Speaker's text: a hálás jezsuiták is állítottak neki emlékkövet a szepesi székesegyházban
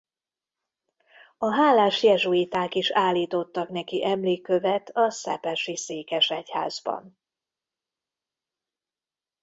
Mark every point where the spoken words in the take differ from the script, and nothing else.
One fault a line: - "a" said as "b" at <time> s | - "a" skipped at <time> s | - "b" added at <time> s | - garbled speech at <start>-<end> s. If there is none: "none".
none